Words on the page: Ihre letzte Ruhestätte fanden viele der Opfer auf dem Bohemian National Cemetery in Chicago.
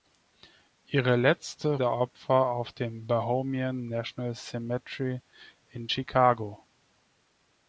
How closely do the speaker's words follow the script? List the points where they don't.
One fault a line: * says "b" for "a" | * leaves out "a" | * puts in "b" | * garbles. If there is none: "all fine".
* leaves out "Ruhestätte fanden viele"